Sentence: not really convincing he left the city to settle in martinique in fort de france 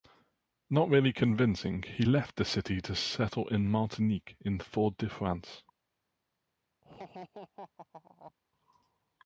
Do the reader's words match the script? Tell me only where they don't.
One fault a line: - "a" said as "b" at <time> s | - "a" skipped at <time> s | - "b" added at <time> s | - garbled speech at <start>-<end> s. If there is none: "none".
none